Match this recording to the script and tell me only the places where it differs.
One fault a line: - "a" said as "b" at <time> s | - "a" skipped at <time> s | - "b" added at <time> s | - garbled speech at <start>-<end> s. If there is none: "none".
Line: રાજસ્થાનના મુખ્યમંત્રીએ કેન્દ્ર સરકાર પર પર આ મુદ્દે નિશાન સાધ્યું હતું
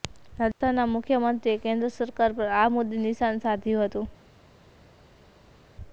- "પર" skipped at 2.5 s